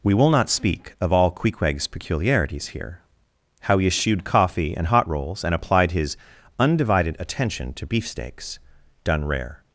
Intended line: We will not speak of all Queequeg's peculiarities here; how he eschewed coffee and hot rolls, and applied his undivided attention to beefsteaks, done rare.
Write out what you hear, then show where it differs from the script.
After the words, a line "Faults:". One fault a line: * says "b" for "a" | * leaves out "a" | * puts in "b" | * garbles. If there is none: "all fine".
We will not speak of all Queequeg's peculiarities here; how he eschewed coffee and hot rolls, and applied his undivided attention to beefsteaks, done rare.
Faults:
all fine